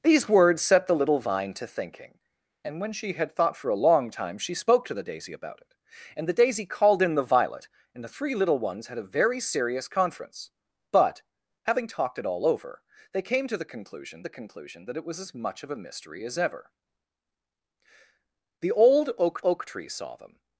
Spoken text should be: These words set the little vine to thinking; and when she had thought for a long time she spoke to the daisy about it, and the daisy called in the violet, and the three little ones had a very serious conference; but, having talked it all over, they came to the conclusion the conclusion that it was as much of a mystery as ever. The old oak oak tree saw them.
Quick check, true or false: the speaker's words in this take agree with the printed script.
true